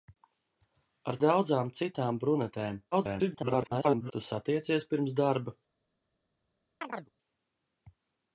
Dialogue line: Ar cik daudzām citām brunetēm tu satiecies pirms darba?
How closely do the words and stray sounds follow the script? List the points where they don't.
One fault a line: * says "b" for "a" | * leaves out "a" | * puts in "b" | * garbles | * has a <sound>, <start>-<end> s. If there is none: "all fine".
* leaves out "cik"
* garbles
* has a chirp, 6.8-7.1 s